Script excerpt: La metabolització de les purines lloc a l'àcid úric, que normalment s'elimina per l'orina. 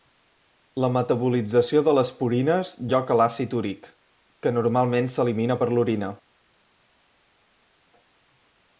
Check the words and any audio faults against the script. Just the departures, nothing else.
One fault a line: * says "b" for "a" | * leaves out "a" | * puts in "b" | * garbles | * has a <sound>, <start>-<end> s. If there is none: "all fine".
all fine